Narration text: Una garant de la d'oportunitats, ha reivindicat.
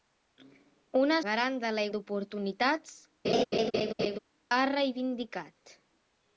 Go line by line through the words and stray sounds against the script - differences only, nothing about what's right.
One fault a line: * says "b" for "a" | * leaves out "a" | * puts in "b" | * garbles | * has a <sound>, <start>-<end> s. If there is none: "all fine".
* has a laugh, 3.2-4.2 s